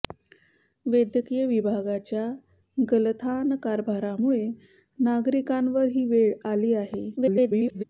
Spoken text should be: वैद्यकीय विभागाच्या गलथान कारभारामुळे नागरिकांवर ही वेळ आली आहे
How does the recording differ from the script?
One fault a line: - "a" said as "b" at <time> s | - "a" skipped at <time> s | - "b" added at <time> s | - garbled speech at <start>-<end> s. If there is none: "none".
- garbled speech at 7.2-7.8 s